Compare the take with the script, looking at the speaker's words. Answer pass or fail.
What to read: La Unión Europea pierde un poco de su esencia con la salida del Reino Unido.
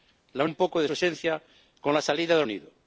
fail